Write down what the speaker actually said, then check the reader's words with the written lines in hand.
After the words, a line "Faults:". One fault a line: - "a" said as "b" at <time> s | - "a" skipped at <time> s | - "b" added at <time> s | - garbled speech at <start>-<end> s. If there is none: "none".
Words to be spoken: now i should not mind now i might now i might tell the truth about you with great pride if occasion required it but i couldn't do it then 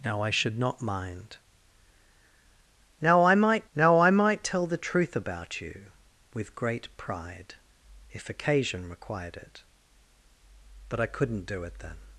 now i should not mind now i might now i might tell the truth about you with great pride if occasion required it but i couldn't do it then
Faults:
none